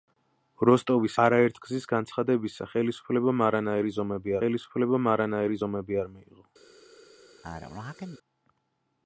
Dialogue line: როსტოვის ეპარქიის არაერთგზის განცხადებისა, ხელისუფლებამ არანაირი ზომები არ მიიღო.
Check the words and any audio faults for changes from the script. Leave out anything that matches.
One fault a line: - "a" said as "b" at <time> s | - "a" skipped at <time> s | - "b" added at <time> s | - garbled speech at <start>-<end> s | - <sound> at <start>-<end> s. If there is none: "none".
- "ეპარქიის" skipped at 1.2 s
- "ხელისუფლებამ არანაირი ზომები" added at 4.4 s
- sneeze at 7.4-8.2 s